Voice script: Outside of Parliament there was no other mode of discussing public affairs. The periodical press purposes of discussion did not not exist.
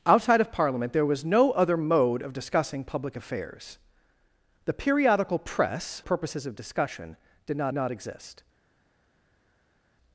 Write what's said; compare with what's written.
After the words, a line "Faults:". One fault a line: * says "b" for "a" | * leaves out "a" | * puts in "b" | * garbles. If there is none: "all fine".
Outside of Parliament there was no other mode of discussing public affairs. The periodical press purposes of discussion did not not exist.
Faults:
all fine